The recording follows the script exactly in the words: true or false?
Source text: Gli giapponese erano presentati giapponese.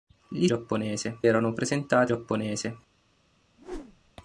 true